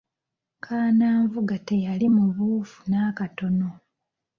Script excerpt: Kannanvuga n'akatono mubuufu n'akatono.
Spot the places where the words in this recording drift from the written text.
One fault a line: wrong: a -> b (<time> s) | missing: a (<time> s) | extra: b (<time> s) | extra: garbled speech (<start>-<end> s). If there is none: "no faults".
wrong: n'akatono -> teyali (1.7 s)